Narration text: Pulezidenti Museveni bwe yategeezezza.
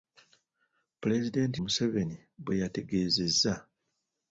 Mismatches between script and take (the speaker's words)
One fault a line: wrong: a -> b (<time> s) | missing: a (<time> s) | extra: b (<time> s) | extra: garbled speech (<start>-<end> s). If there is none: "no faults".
no faults